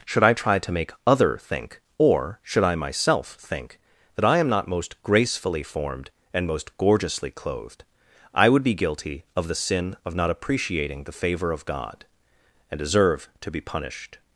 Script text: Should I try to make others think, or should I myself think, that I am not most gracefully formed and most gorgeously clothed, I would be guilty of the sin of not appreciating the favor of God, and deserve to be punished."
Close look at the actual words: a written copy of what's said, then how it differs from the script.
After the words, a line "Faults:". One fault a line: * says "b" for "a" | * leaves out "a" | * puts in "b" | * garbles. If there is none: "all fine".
Should I try to make other think, or should I myself think, that I am not most gracefully formed and most gorgeously clothed, I would be guilty of the sin of not appreciating the favor of God, and deserve to be punished."
Faults:
* says "other" for "others"